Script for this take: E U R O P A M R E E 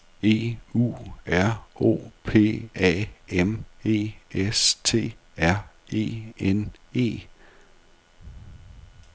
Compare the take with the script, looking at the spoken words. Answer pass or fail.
fail